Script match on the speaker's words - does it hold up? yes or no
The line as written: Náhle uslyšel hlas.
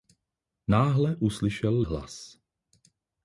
yes